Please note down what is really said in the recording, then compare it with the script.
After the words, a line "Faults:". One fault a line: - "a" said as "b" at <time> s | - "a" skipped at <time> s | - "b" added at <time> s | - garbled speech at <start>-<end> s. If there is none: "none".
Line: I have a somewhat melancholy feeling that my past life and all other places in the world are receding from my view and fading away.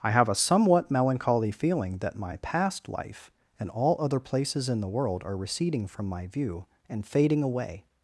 I have a somewhat melancholy feeling that my past life and all other places in the world are receding from my view and fading away.
Faults:
none